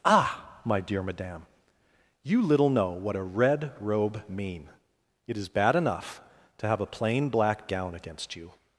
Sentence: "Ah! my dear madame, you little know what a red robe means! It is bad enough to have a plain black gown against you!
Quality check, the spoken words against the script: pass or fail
fail